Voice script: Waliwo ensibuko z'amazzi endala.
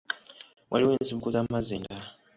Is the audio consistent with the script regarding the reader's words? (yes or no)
yes